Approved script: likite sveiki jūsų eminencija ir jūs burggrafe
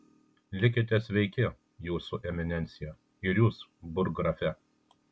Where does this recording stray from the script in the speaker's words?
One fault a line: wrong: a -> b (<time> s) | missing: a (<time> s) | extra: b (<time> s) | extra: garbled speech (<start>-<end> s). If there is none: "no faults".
no faults